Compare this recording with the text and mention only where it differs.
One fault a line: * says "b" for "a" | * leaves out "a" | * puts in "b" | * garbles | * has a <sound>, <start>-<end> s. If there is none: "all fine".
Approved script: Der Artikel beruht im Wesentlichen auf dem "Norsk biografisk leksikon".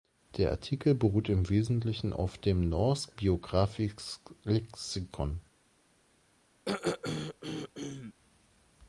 * has a throat clearing, 6.7-8.1 s